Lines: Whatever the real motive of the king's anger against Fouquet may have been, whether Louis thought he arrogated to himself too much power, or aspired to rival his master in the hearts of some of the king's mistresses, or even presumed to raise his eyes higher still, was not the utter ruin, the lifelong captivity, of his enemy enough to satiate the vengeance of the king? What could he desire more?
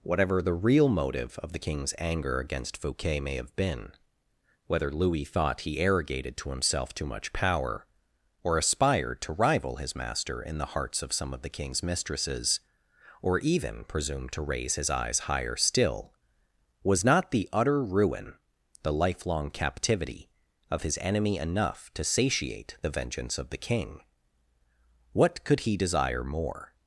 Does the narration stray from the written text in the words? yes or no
no